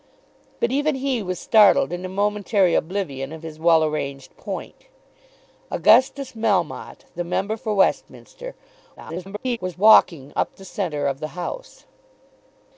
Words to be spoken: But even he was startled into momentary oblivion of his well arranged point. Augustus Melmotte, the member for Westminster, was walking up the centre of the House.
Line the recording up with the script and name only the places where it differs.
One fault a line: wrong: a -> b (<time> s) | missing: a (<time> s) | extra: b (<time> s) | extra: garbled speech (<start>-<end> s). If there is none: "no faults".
extra: garbled speech (9.0-9.6 s)